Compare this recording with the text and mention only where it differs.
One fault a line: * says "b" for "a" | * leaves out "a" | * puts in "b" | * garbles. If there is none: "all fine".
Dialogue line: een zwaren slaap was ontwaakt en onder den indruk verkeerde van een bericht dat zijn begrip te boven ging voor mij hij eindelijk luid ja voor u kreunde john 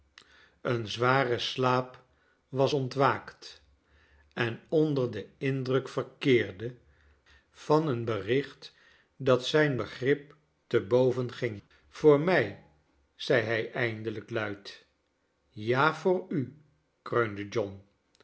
* puts in "zei"